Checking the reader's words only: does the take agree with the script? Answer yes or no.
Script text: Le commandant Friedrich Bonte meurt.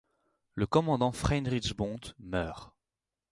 yes